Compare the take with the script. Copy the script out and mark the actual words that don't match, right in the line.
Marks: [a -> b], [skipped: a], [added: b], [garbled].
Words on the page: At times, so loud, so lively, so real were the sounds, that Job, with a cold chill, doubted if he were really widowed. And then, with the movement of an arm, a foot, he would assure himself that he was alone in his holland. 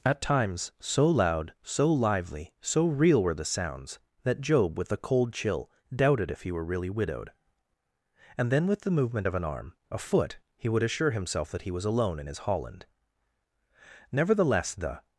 At times, so loud, so lively, so real were the sounds, that Job, with a cold chill, doubted if he were really widowed. And then, with the movement of an arm, a foot, he would assure himself that he was alone in his holland. [added: Nevertheless the]